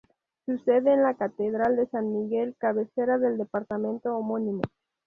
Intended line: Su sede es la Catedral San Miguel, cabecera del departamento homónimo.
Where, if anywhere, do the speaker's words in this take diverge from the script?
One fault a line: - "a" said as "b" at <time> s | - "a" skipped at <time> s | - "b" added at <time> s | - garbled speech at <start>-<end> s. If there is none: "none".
- "de" added at 1.8 s